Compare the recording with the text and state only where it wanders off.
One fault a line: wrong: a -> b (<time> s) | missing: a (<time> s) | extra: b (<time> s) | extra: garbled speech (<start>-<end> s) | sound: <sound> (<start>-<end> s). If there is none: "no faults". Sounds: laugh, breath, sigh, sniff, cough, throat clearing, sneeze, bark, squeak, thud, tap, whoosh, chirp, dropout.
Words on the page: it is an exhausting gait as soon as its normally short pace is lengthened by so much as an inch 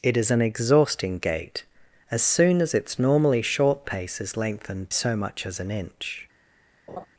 missing: by (4.9 s)
sound: laugh (6.9-7.1 s)